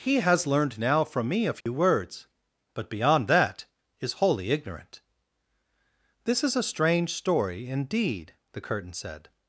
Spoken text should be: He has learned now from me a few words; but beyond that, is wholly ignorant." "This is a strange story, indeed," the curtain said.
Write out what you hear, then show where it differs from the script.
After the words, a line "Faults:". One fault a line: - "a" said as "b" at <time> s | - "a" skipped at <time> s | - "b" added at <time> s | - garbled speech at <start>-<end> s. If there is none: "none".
He has learned now from me a few words; but beyond that, is wholly ignorant." "This is a strange story, indeed," the curtain said.
Faults:
none